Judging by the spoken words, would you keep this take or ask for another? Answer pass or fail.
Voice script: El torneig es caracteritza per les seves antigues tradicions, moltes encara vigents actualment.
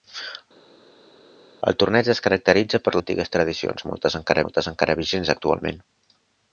fail